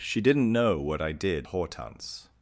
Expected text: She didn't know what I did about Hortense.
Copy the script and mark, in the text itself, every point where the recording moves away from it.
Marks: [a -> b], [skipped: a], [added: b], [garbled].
She didn't know what I did [skipped: about] Hortense.